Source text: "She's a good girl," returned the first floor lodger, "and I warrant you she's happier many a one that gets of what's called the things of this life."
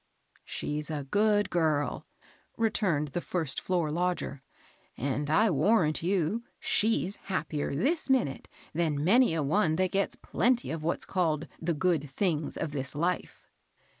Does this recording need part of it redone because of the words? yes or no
yes